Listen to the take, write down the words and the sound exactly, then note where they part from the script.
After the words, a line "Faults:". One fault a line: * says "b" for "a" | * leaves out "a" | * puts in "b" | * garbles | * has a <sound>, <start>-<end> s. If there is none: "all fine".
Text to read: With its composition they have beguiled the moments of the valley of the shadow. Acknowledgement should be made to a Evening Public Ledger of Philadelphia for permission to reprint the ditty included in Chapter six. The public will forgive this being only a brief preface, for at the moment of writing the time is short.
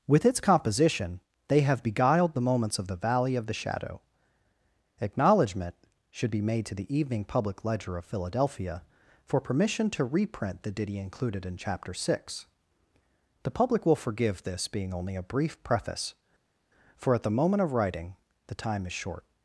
With its composition they have beguiled the moments of the valley of the shadow. Acknowledgement should be made to the Evening Public Ledger of Philadelphia for permission to reprint the ditty included in Chapter six. The public will forgive this being only a brief preface, for at the moment of writing the time is short.
Faults:
* says "the" for "a"